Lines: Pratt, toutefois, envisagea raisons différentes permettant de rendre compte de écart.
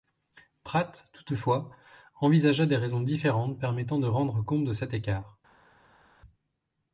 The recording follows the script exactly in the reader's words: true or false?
false